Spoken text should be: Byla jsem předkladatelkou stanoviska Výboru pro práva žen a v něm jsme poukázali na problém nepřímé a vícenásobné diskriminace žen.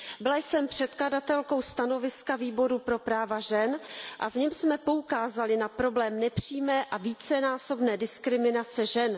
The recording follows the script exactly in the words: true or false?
true